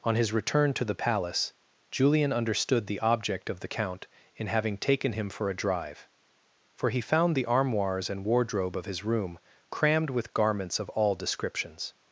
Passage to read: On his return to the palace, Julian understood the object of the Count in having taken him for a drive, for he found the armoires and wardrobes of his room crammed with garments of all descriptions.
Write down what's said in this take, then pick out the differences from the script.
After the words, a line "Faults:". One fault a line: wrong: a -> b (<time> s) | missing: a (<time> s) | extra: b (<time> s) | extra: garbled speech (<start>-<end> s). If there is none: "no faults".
On his return to the palace, Julian understood the object of the Count in having taken him for a drive, for he found the armoires and wardrobe of his room crammed with garments of all descriptions.
Faults:
wrong: wardrobes -> wardrobe (8.2 s)